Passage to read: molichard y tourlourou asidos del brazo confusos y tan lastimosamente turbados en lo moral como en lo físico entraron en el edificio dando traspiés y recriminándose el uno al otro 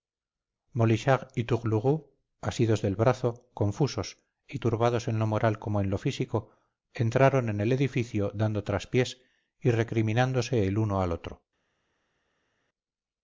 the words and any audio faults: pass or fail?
fail